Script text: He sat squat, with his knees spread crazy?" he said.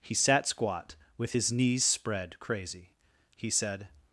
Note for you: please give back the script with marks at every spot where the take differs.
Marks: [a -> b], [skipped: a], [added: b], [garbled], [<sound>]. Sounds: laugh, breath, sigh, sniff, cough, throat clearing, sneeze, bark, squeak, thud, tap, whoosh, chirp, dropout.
He sat squat, with his knees spread crazy?" he said.